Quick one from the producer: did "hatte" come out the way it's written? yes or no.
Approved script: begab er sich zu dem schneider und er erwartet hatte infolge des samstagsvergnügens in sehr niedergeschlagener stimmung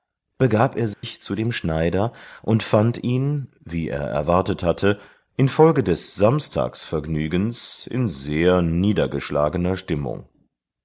yes